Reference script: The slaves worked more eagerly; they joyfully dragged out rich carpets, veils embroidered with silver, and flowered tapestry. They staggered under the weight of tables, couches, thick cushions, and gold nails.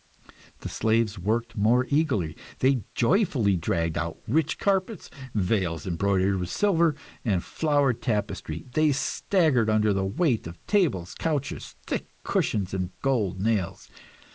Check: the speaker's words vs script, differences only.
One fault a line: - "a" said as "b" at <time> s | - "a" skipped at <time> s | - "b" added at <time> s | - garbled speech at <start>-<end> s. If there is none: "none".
none